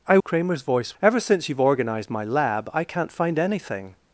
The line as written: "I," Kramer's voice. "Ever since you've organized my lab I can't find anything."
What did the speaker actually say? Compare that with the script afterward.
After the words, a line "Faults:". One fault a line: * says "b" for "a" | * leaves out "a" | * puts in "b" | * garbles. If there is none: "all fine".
"I," Kramer's voice. "Ever since you've organized my lab I can't find anything."
Faults:
all fine